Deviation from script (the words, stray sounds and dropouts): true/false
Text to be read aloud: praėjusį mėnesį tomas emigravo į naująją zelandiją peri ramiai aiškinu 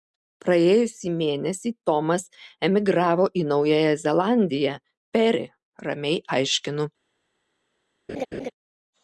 true